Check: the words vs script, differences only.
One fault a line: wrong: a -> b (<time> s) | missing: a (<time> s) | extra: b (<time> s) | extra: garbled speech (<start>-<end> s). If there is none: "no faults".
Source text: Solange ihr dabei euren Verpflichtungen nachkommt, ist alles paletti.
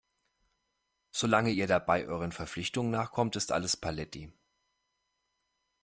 no faults